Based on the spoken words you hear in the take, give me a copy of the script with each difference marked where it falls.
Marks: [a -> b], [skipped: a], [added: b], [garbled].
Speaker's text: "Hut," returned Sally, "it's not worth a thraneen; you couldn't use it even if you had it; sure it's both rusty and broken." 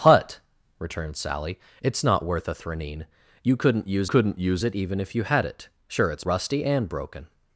"Hut," returned Sally, "it's not worth a thraneen; you couldn't use [added: couldn't use] it even if you had it; sure it's [skipped: both] rusty and broken."